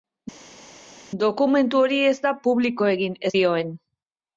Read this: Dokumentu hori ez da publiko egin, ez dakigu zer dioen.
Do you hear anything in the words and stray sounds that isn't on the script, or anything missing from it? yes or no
yes